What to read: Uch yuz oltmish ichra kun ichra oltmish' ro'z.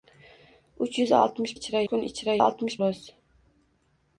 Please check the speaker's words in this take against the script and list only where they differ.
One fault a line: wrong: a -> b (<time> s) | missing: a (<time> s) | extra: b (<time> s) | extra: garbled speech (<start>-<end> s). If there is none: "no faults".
no faults